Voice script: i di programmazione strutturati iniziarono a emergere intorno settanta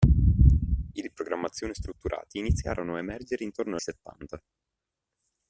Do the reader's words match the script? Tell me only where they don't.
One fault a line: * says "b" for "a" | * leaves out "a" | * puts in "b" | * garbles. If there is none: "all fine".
all fine